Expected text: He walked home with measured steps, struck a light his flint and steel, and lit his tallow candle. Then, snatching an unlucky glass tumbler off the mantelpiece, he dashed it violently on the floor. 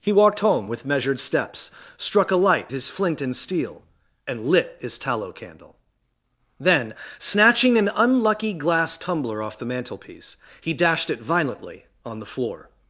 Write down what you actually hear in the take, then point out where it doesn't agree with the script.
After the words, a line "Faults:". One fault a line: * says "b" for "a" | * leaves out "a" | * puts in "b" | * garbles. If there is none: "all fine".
He walked home with measured steps, struck a light his flint and steel, and lit his tallow candle. Then, snatching an unlucky glass tumbler off the mantelpiece, he dashed it violently on the floor.
Faults:
all fine